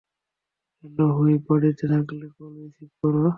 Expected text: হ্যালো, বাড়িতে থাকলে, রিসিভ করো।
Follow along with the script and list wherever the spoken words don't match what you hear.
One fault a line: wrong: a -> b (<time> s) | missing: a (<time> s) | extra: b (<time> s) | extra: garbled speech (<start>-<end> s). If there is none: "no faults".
extra: হুইপ (1.2 s)
extra: কল (2.4 s)